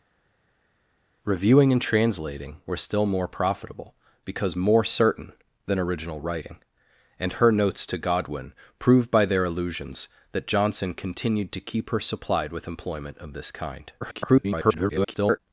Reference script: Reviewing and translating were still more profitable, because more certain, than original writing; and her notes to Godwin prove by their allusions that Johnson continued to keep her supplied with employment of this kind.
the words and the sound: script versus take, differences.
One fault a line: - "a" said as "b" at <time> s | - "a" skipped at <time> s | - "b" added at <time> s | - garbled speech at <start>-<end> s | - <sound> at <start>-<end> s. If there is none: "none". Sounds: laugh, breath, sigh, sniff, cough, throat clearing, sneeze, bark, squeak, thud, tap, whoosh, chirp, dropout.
- garbled speech at 14.0-15.4 s